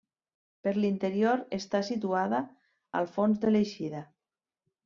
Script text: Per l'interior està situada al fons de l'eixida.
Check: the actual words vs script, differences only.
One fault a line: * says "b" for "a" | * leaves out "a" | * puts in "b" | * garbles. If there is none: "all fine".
all fine